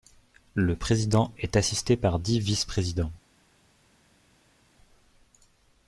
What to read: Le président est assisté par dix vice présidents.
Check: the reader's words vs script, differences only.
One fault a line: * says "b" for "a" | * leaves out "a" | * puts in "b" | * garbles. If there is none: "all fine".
all fine